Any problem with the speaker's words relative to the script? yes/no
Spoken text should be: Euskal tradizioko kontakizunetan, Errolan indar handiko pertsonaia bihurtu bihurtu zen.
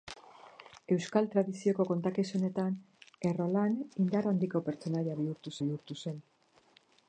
no